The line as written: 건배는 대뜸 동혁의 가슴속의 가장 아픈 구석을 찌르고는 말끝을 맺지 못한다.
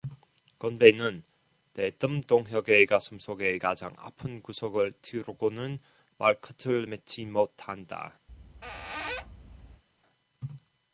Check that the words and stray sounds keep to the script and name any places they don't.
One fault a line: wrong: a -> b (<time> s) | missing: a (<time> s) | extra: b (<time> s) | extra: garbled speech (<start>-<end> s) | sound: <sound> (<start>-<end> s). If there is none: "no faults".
sound: squeak (8.3-9.8 s)